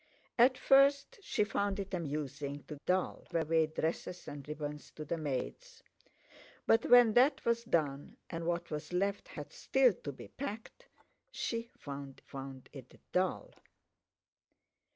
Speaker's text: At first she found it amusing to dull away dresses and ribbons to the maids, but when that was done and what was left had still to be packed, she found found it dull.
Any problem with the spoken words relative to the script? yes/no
no